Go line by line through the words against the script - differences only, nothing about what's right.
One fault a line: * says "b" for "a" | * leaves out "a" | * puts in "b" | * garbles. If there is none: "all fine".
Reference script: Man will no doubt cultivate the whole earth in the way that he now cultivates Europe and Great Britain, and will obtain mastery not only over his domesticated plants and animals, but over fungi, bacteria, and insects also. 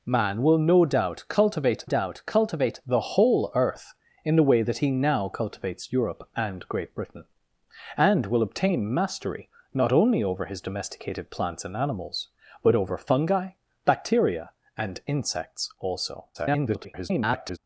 * puts in "doubt cultivate"
* garbles